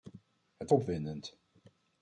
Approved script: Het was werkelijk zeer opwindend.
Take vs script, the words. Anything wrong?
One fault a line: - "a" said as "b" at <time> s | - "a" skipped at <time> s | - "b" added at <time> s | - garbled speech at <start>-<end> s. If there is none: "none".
- "was werkelijk zeer" skipped at 0.7 s